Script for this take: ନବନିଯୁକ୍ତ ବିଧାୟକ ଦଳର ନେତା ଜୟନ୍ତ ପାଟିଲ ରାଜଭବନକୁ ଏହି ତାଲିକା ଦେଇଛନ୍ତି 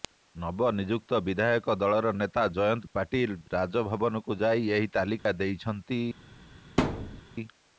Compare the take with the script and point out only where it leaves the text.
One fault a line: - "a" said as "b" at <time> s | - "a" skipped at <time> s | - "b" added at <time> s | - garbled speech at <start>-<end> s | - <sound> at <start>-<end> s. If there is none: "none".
- "ଯାଇ" added at 4.4 s
- dropout at 5.2-5.3 s
- thud at 6.8-7.2 s